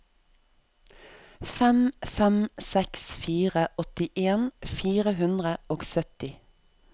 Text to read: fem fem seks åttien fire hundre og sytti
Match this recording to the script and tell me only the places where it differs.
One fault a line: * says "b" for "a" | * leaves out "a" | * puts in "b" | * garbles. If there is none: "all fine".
* puts in "fire"